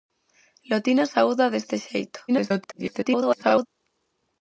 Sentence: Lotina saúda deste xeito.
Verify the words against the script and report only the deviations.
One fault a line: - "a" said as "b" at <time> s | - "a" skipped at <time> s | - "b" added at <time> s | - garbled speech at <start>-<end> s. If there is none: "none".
- garbled speech at 2.3-3.7 s